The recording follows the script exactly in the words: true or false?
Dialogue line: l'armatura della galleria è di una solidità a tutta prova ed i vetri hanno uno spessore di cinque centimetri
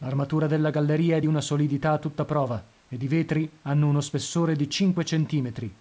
true